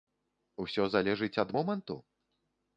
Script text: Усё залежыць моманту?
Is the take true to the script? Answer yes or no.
no